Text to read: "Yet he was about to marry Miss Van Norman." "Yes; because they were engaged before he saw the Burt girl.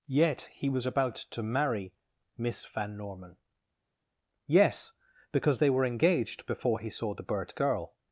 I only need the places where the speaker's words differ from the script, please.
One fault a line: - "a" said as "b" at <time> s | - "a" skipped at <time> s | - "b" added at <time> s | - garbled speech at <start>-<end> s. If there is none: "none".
none